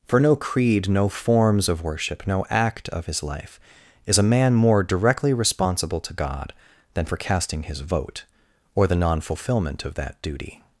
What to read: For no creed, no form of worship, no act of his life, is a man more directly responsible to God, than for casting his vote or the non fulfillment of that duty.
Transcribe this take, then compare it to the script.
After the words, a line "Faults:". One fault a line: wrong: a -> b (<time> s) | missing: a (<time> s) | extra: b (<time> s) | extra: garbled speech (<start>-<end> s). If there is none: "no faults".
For no creed, no forms of worship, no act of his life, is a man more directly responsible to God, than for casting his vote or the non fulfillment of that duty.
Faults:
wrong: form -> forms (1.1 s)